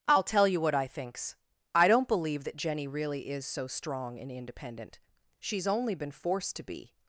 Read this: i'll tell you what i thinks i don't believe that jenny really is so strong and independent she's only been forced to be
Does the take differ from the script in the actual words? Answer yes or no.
no